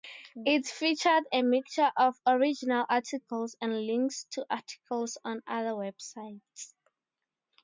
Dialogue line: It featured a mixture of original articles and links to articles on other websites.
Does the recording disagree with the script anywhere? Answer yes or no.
no